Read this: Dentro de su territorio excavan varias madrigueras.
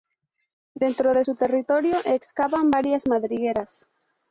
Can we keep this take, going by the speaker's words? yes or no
yes